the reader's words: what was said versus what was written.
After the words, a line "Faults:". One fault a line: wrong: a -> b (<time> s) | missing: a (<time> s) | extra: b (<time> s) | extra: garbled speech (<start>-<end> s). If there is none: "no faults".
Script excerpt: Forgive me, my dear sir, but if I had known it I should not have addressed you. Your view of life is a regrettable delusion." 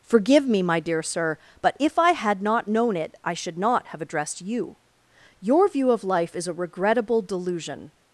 Forgive me, my dear sir, but if I had not known it I should not have addressed you. Your view of life is a regrettable delusion."
Faults:
extra: not (2.4 s)